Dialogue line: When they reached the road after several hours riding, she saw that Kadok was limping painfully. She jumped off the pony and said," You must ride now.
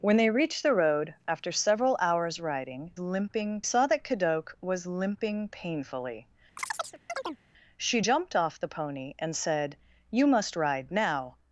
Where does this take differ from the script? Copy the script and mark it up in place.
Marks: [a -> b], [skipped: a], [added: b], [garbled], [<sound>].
When they reached the road after several hours riding, [she -> limping] saw that Kadok was limping painfully. [chirp] She jumped off the pony and said," You must ride now.